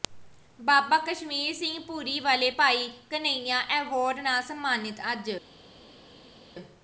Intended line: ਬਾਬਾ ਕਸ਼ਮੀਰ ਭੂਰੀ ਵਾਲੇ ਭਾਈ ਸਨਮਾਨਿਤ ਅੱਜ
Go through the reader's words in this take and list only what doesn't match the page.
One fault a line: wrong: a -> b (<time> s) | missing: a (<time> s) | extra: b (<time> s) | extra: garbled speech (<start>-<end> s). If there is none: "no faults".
extra: ਸਿੰਘ (1.6 s)
extra: ਘਨੱਈਆ ਐਵਾਰਡ ਨਾਲ (3.1 s)